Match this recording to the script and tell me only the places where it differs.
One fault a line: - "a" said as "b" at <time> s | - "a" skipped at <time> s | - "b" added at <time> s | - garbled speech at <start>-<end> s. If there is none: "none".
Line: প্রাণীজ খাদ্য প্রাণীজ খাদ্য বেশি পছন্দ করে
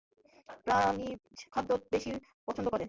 - "প্রাণীজ খাদ্য" skipped at 1.7 s